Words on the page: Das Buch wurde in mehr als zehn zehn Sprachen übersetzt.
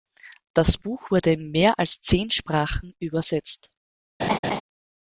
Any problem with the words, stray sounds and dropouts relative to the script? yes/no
yes